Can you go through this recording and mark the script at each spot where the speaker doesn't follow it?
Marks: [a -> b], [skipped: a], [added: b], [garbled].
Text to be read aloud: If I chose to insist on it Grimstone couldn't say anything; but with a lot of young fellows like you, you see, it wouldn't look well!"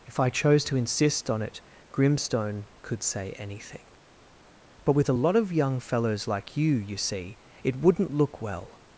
If I chose to insist on it Grimstone [couldn't -> could] say anything; but with a lot of young fellows like you, you see, it wouldn't look well!"